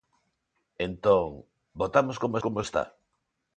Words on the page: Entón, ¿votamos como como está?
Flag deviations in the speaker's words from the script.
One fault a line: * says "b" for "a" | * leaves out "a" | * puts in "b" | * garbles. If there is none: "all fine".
all fine